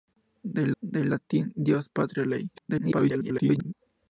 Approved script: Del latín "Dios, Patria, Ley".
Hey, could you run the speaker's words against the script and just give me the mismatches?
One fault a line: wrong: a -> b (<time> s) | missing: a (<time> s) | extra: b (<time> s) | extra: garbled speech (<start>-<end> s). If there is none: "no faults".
extra: del (0.8 s)
extra: garbled speech (2.5-3.7 s)